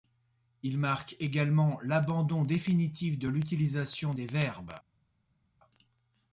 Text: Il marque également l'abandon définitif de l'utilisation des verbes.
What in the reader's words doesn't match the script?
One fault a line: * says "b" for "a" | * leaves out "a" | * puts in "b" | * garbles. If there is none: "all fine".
all fine